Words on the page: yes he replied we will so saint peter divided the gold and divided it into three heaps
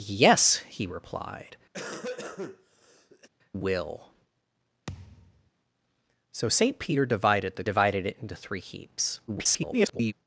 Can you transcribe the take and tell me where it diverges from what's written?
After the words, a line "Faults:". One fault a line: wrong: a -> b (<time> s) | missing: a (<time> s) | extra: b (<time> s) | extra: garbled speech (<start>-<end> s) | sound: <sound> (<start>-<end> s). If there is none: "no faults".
yes he replied will so saint peter divided the divided it into three heaps [garbled]
Faults:
missing: we (1.6 s)
sound: cough (1.7-3.3 s)
sound: thud (4.9-5.5 s)
missing: gold and (7.6 s)
extra: garbled speech (9.3-10.1 s)